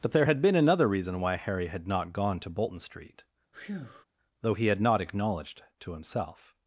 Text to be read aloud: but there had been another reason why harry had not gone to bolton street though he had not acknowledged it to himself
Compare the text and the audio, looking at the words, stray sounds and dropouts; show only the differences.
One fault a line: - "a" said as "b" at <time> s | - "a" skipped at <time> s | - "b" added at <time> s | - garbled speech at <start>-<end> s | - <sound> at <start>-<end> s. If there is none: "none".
- breath at 3.5-4.1 s
- "it" skipped at 5.6 s